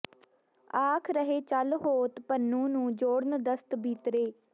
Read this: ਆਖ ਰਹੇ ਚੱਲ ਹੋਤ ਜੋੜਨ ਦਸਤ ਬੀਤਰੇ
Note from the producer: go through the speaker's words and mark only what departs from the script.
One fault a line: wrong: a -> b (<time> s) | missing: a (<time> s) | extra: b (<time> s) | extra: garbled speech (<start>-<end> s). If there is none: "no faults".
extra: ਪੁਨੂੰ ਨੂੰ (2.2 s)